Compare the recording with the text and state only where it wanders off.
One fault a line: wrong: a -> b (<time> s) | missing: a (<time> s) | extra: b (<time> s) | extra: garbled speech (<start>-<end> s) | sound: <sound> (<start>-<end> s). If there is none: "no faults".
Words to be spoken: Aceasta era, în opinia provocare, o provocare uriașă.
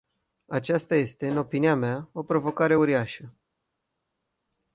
wrong: era -> este (0.9 s)
wrong: provocare -> mea (1.8 s)